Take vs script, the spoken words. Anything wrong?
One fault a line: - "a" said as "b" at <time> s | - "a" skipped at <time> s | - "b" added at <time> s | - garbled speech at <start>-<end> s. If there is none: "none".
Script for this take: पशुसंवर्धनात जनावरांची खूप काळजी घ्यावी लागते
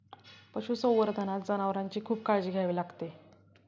none